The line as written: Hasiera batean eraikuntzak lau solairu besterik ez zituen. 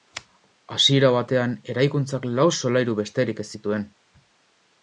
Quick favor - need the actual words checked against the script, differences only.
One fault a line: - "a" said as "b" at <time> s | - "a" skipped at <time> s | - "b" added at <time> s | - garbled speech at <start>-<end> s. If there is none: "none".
none